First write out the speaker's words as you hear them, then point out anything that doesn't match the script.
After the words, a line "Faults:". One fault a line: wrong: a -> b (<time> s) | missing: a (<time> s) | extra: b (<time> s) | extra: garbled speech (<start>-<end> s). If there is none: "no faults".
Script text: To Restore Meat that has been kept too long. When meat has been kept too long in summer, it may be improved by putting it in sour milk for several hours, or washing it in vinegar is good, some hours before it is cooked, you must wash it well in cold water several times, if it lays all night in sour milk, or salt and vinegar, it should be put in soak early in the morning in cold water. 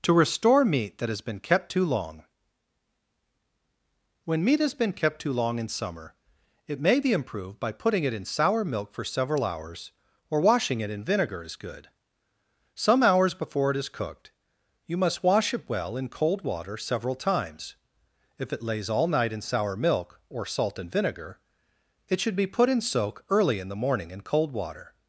To Restore Meat that has been kept too long. When meat has been kept too long in summer, it may be improved by putting it in sour milk for several hours, or washing it in vinegar is good, some hours before it is cooked, you must wash it well in cold water several times, if it lays all night in sour milk, or salt and vinegar, it should be put in soak early in the morning in cold water.
Faults:
no faults